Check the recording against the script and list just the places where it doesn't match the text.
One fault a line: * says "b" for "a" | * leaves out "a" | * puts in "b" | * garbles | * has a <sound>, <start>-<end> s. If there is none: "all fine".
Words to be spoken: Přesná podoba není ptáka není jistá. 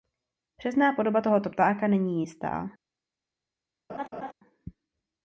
* says "tohoto" for "není"
* has a laugh, 3.9-4.3 s